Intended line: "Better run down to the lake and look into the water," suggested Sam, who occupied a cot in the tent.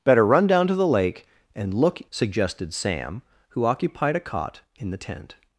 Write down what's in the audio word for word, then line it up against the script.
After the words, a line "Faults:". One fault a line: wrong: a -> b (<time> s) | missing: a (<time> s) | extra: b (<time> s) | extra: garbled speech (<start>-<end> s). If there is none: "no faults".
"Better run down to the lake and look," suggested Sam, who occupied a cot in the tent.
Faults:
missing: into the water (2.0 s)